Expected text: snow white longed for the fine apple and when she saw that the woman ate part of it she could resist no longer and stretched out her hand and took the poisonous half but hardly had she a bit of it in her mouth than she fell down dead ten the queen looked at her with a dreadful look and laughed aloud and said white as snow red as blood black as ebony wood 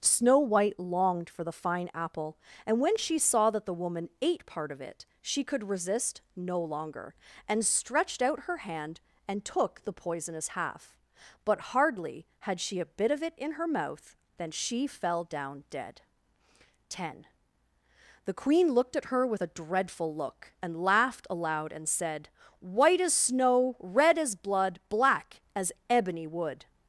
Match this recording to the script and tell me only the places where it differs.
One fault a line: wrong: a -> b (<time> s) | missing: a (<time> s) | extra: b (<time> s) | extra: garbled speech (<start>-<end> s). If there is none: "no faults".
no faults